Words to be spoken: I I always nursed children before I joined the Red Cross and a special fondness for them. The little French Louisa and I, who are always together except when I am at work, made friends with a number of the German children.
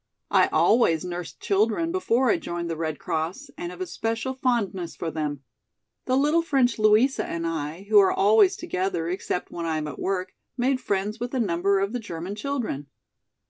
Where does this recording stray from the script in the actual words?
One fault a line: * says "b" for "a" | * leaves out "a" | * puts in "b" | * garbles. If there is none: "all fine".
* leaves out "I"
* puts in "have"